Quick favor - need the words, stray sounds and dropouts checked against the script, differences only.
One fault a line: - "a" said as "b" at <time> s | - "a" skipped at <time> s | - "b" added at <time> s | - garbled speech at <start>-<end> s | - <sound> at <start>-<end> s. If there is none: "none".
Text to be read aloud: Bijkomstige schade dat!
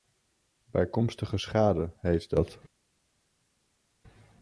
- "heet" added at 2.0 s